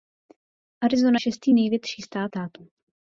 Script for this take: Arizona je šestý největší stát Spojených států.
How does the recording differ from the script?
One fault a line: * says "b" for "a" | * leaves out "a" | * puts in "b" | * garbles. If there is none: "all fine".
* leaves out "je"
* leaves out "Spojených"